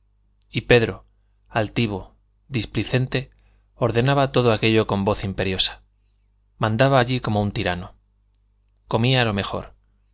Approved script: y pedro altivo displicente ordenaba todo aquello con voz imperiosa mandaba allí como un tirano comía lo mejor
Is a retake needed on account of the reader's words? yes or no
no